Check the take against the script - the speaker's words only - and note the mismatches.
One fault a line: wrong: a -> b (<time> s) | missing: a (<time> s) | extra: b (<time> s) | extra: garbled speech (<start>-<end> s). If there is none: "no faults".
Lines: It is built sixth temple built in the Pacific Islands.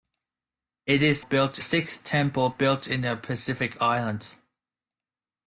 no faults